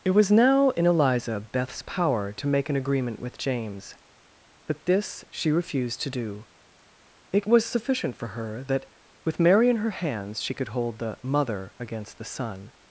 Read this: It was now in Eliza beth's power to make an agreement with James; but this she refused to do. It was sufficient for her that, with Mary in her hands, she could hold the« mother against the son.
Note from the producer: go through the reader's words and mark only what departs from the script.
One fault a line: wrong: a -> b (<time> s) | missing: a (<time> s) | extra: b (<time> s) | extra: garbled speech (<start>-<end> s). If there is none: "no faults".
no faults